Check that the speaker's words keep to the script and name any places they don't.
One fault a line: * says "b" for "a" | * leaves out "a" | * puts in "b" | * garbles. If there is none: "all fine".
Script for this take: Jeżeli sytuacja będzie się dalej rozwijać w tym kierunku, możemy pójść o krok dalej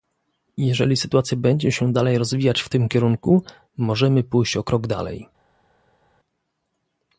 all fine